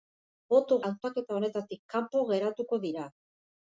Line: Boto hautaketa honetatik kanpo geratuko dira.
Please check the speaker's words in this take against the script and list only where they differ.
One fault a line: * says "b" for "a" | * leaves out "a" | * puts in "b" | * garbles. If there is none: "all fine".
all fine